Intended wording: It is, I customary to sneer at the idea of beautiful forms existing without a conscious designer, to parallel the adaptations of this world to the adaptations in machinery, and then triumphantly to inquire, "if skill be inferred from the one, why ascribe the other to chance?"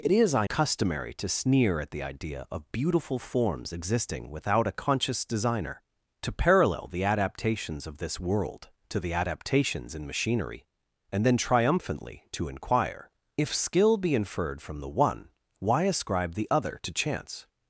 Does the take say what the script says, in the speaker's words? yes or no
yes